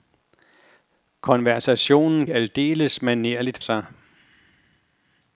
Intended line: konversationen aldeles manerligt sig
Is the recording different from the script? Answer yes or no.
no